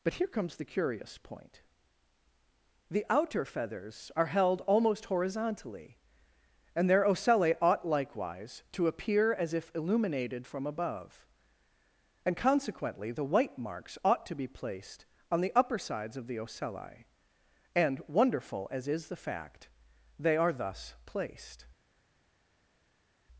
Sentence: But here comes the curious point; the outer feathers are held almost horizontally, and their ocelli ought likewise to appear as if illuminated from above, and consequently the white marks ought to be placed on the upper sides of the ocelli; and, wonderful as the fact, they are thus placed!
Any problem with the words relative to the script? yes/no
yes